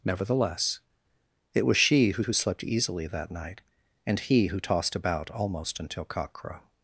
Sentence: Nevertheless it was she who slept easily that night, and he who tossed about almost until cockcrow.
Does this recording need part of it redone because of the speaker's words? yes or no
yes